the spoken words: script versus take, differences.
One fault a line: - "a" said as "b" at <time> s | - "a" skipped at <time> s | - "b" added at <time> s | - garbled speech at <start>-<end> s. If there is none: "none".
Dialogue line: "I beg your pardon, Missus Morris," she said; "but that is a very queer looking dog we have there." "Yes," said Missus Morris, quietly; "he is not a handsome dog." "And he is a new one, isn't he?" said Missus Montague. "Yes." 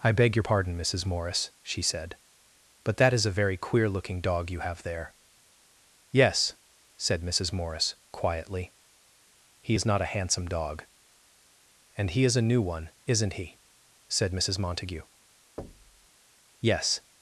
- "we" said as "you" at 4.5 s